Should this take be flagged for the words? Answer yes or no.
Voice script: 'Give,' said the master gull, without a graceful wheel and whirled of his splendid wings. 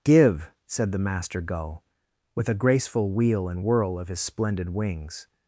yes